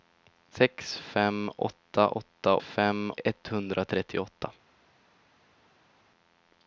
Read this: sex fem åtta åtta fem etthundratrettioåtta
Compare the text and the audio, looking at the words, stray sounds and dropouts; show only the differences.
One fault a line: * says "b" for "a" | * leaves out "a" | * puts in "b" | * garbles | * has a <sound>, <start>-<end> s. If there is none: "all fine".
all fine